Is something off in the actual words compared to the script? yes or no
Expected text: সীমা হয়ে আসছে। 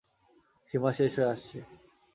yes